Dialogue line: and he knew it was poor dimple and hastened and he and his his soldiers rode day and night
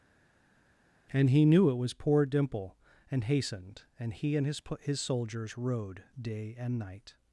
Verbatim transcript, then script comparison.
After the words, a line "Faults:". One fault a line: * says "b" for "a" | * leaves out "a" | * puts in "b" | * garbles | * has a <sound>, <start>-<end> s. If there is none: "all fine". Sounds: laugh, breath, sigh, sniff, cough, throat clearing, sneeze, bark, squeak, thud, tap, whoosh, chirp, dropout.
and he knew it was poor dimple and hastened and he and his his soldiers rode day and night
Faults:
all fine